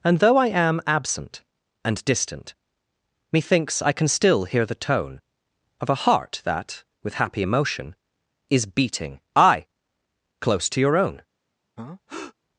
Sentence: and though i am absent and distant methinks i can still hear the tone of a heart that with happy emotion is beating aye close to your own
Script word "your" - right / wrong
right